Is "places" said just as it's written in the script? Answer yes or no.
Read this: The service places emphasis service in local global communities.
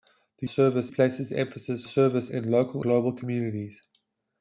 yes